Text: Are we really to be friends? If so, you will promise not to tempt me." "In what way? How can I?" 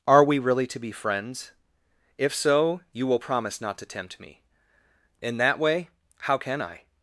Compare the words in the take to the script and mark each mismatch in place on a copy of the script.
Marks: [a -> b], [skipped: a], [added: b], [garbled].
Are we really to be friends? If so, you will promise not to tempt me." "In [what -> that] way? How can I?"